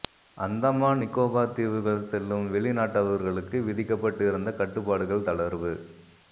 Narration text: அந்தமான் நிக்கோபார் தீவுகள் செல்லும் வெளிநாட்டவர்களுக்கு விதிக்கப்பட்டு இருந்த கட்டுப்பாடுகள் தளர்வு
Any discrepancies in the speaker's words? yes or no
no